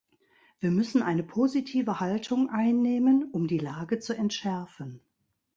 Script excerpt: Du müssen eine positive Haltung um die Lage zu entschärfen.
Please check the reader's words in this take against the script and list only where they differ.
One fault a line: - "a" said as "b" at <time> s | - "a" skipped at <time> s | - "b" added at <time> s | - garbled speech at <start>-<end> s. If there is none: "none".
- "Du" said as "Wir" at 0.6 s
- "einnehmen" added at 2.5 s